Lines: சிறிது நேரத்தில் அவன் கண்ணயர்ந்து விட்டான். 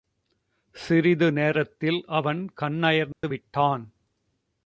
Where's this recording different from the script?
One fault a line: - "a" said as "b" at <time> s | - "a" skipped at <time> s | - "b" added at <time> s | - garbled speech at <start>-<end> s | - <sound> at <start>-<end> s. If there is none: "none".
- dropout at 3.1-3.2 s